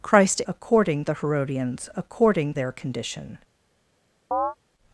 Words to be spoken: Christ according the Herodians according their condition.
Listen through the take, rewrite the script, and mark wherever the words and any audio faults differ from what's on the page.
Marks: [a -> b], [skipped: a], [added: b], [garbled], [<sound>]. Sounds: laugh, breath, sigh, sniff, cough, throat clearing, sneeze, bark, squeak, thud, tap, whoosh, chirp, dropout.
Christ according the Herodians according their condition. [chirp]